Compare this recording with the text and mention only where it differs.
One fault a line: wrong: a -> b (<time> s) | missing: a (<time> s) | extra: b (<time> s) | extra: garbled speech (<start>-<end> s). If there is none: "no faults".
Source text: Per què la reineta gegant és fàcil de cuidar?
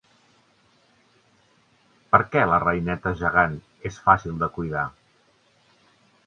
no faults